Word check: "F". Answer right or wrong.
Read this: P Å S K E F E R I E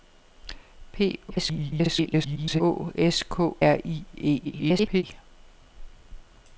wrong